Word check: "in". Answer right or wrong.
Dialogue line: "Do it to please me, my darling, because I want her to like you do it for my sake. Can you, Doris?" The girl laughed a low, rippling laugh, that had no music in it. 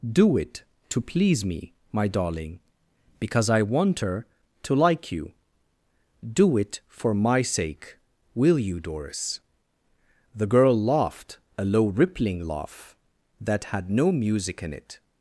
right